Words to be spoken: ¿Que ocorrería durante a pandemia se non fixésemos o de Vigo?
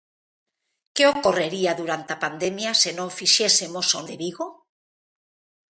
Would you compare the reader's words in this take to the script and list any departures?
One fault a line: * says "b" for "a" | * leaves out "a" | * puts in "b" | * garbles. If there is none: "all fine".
all fine